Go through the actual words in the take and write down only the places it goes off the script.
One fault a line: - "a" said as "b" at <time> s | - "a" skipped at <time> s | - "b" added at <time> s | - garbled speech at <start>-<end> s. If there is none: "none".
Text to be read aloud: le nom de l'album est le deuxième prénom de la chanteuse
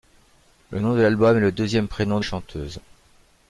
- "la" skipped at 2.2 s